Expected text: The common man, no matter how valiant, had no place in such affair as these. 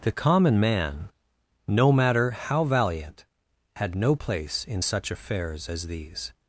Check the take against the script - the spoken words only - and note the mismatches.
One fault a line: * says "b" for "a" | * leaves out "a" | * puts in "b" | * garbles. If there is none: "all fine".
* says "affairs" for "affair"